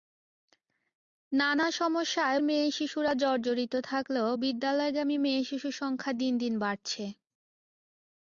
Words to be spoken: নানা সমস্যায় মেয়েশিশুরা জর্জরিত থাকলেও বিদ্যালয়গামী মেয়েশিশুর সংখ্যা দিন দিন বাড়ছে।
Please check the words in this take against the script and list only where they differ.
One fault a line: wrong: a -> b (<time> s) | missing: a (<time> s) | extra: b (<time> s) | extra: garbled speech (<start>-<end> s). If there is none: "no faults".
no faults